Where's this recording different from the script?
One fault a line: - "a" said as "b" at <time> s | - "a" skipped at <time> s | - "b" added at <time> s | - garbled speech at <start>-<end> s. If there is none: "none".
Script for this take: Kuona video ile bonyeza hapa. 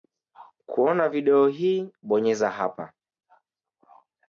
- "ile" said as "hii" at 1.5 s